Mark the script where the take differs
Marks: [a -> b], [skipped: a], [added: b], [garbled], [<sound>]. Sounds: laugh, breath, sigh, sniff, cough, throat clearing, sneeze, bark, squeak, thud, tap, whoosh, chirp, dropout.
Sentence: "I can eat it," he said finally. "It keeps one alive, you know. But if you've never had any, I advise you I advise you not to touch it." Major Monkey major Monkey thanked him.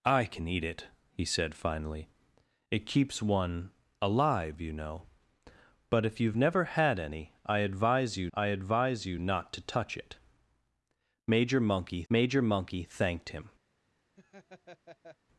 "I can eat it," he said finally. "It keeps one alive, you know. But if you've never had any, I advise you I advise you not to touch it." Major Monkey major Monkey thanked him. [laugh]